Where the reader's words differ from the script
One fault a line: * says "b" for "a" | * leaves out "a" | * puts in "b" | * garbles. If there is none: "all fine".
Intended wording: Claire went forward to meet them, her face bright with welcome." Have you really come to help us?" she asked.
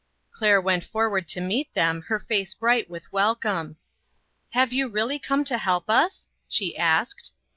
all fine